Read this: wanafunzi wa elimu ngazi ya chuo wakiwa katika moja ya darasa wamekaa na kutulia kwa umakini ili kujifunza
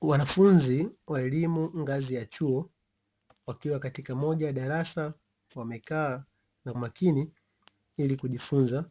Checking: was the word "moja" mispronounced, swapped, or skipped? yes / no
no